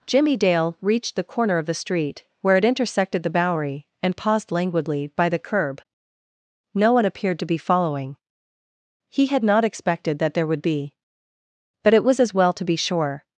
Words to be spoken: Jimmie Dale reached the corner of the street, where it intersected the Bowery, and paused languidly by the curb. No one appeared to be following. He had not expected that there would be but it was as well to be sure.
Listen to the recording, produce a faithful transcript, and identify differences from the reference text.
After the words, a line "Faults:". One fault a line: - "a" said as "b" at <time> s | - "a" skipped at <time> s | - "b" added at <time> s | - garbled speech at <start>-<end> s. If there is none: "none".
Jimmie Dale reached the corner of the street, where it intersected the Bowery, and paused languidly by the curb. No one appeared to be following. He had not expected that there would be but it was as well to be sure.
Faults:
none